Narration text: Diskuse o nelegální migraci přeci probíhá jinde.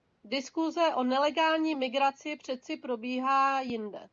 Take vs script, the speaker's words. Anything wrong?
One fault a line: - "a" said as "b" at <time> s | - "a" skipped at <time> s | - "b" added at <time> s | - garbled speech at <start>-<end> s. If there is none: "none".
none